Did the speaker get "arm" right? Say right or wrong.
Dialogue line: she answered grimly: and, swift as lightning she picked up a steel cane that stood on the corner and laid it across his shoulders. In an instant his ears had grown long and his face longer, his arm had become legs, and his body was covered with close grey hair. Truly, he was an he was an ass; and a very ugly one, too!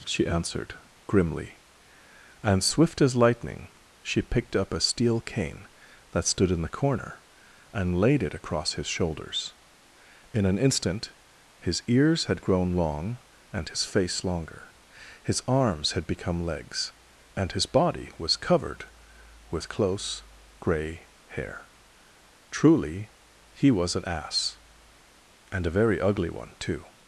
wrong